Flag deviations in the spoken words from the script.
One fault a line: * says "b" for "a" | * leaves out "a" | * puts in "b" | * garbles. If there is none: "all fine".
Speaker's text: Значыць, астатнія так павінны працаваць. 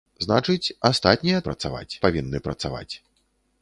* says "працаваць" for "так"